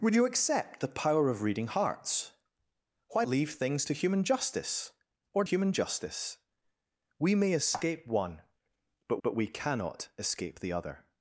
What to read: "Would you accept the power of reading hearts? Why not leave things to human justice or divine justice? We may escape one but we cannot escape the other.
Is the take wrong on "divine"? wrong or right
wrong